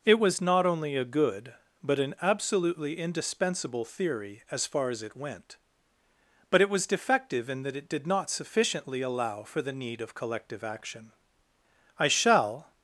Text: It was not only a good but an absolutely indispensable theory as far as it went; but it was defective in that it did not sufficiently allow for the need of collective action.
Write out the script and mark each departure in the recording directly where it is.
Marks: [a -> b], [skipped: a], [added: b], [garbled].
It was not only a good but an absolutely indispensable theory as far as it went; but it was defective in that it did not sufficiently allow for the need of collective action. [added: I shall]